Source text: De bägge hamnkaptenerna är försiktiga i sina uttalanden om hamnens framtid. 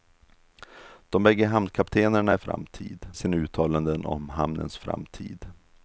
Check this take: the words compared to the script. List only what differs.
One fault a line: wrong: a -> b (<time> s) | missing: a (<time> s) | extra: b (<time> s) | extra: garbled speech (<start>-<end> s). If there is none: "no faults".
wrong: försiktiga -> framtid (2.4 s)